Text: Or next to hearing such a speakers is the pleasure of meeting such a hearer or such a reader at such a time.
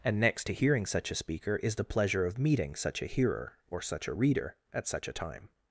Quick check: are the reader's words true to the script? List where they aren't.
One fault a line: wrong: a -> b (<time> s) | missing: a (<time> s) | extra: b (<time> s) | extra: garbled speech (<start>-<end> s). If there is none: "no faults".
wrong: Or -> And (0.0 s)
wrong: speakers -> speaker (1.1 s)